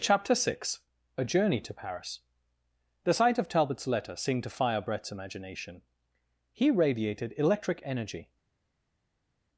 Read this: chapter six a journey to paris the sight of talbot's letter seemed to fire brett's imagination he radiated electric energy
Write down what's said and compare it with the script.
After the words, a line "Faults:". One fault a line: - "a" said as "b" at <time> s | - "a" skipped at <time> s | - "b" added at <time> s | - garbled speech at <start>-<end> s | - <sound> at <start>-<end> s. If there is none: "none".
chapter six a journey to paris the sight of talbot's letter seemed to fire brett's imagination he radiated electric energy
Faults:
none